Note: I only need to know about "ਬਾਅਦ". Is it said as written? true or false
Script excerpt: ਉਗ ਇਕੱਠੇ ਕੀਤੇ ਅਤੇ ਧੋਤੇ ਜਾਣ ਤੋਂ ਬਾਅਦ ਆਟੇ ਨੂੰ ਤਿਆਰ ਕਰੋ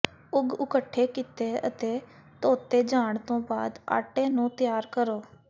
true